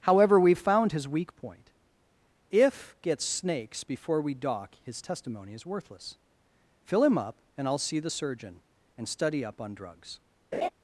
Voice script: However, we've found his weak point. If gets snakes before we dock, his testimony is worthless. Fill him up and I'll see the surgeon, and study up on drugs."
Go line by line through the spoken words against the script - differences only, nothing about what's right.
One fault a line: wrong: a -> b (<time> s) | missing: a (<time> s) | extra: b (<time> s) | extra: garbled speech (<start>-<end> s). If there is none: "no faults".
no faults